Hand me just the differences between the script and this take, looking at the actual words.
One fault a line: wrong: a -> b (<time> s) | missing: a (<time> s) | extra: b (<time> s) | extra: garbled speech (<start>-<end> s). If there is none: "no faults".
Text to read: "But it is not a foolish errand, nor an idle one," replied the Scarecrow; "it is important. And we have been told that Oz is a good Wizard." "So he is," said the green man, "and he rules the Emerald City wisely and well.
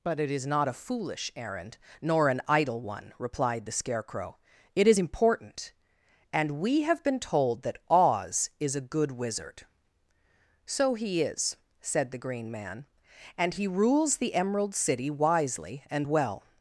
no faults